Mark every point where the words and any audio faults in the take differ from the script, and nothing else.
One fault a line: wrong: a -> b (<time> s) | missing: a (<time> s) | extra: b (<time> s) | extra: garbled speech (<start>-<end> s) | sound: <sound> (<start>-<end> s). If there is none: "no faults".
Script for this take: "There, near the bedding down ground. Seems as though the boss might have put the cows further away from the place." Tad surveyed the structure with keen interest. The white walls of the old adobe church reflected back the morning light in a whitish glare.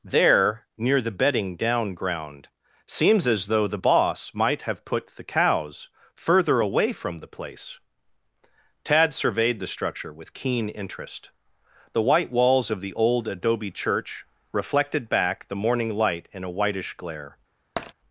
sound: tap (17.8-17.9 s)